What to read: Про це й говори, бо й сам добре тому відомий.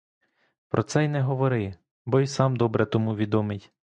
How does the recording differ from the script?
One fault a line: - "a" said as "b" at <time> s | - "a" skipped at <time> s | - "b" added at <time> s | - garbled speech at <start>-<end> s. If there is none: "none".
- "не" added at 1.1 s